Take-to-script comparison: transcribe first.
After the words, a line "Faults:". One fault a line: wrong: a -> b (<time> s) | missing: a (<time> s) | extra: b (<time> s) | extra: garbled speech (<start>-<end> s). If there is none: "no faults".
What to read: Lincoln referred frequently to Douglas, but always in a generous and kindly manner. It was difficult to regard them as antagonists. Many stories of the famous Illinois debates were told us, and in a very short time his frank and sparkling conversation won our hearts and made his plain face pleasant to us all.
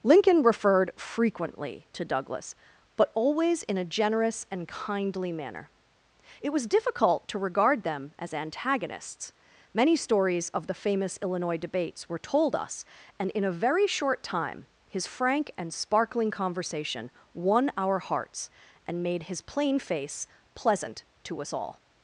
Lincoln referred frequently to Douglas, but always in a generous and kindly manner. It was difficult to regard them as antagonists. Many stories of the famous Illinois debates were told us, and in a very short time his frank and sparkling conversation won our hearts and made his plain face pleasant to us all.
Faults:
no faults